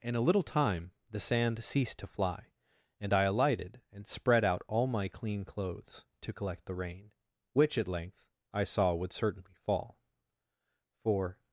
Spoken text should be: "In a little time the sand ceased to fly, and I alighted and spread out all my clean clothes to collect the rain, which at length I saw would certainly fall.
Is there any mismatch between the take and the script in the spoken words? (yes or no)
yes